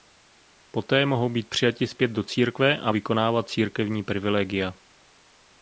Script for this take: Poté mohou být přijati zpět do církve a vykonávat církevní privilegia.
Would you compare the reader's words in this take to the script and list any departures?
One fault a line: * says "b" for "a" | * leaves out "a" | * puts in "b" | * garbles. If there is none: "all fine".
all fine